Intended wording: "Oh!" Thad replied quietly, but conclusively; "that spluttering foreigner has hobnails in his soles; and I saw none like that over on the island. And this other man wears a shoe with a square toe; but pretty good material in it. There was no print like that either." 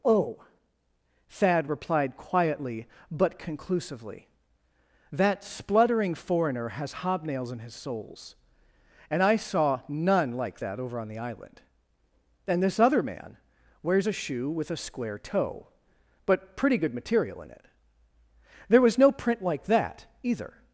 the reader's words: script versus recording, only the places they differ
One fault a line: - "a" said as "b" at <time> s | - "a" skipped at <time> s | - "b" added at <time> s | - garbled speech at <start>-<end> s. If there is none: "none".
none